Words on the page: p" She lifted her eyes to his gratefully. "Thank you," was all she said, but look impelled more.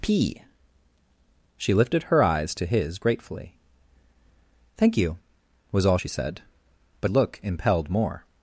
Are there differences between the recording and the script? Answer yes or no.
no